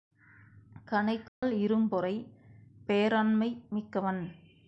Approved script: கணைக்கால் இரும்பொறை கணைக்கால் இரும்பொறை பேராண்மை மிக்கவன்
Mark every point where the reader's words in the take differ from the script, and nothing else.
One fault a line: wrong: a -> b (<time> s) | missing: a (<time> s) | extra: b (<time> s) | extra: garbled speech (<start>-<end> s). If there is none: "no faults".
missing: கணைக்கால் இரும்பொறை (2.1 s)